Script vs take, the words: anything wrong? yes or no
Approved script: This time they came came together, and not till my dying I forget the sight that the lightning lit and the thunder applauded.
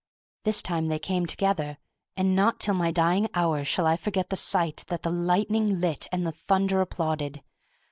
yes